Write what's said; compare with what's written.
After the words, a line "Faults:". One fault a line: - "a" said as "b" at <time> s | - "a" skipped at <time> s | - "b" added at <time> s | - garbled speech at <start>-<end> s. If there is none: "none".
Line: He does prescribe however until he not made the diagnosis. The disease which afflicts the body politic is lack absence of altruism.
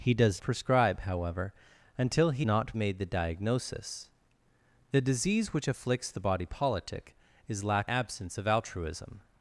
He does prescribe however until he not made the diagnosis. The disease which afflicts the body politic is lack absence of altruism.
Faults:
none